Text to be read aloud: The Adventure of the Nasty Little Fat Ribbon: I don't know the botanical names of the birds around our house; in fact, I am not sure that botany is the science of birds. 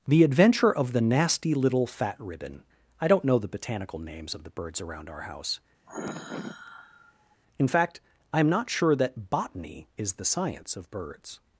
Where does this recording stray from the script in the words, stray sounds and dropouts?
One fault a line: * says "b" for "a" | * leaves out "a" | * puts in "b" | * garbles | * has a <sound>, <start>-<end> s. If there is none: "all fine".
* has a sigh, 5.9-7.4 s